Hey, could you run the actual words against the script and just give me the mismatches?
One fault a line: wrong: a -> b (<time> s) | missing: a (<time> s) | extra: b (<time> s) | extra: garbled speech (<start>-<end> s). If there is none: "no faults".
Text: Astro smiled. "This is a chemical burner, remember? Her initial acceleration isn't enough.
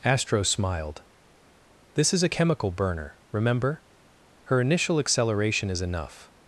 wrong: isn't -> is (5.7 s)